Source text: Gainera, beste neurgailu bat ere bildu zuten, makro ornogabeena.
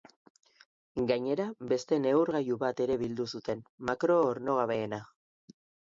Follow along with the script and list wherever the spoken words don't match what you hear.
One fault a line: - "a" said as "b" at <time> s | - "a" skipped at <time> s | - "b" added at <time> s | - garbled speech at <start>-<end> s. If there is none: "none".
none